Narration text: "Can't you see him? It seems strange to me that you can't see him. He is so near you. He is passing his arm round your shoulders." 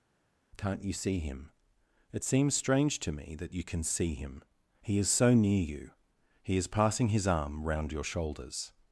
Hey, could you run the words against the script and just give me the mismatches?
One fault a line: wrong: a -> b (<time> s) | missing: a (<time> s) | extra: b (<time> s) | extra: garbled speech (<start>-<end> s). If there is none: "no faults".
wrong: can't -> can (3.6 s)